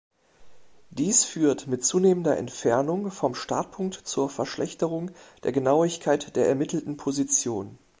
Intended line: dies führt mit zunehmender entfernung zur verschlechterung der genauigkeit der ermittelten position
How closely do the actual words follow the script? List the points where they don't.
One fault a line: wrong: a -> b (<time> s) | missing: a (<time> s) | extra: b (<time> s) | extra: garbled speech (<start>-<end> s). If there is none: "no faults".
extra: vom startpunkt (3.1 s)